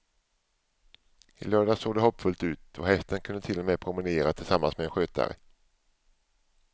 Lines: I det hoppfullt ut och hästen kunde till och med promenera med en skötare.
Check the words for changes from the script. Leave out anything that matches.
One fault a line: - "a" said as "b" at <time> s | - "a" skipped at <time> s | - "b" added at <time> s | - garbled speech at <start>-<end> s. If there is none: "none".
- "lördags såg" added at 1.4 s
- "tillsammans" added at 4.3 s